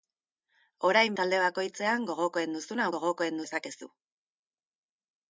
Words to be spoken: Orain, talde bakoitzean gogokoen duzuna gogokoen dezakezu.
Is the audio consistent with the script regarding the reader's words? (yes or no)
yes